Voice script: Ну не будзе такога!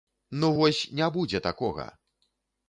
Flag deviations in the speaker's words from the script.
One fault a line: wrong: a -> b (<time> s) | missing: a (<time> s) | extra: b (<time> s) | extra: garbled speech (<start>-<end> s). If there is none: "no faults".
extra: вось (0.6 s)